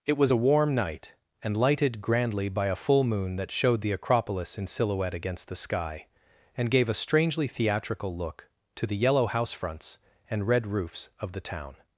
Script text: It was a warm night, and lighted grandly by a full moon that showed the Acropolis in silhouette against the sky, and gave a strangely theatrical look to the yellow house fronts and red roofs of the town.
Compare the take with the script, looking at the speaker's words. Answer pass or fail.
pass